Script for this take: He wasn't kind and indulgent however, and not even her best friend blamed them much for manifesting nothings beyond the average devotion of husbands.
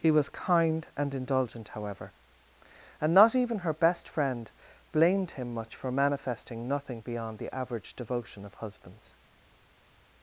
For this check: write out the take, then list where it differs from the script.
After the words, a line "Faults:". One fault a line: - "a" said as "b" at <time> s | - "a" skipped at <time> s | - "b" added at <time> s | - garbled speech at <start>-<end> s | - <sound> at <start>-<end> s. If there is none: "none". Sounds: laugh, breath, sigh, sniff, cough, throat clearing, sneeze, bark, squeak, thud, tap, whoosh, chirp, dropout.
He was kind and indulgent however, and not even her best friend blamed him much for manifesting nothing beyond the average devotion of husbands.
Faults:
- "wasn't" said as "was" at 0.1 s
- "them" said as "him" at 5.3 s
- "nothings" said as "nothing" at 6.7 s